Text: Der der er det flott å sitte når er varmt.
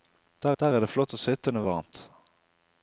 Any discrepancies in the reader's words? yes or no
no